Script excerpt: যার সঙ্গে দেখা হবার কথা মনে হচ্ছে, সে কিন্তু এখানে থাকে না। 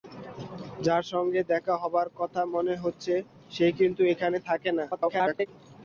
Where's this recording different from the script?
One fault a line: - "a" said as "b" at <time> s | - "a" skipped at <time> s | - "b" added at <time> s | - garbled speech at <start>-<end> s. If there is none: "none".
- garbled speech at 4.9-5.5 s